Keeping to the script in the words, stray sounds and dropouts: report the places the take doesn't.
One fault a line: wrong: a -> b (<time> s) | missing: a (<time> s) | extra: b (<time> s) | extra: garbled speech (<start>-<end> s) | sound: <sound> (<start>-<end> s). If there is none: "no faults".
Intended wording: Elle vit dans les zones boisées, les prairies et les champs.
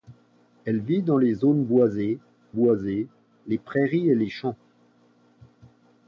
extra: boisées (2.5 s)